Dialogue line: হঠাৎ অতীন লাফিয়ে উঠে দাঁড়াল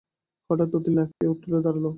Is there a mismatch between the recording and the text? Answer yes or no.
no